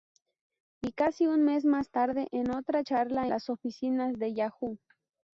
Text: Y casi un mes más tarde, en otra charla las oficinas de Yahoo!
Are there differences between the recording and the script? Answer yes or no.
no